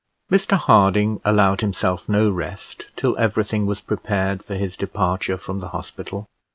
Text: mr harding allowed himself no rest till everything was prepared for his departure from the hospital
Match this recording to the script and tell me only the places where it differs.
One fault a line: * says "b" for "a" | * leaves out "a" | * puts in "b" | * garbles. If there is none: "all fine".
all fine